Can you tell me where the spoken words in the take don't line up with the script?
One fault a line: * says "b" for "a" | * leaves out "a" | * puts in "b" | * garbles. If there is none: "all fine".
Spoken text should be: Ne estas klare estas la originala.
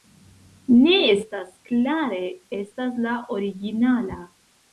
all fine